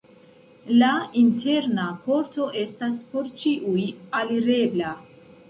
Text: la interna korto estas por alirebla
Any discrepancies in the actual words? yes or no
yes